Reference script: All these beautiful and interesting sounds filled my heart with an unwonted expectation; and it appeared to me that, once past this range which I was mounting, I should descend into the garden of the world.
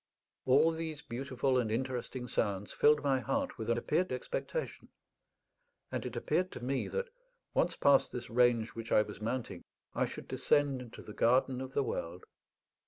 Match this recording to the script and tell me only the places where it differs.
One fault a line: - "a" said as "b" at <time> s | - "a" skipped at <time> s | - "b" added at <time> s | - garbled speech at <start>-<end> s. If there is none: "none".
- "unwonted" said as "appeared" at 3.8 s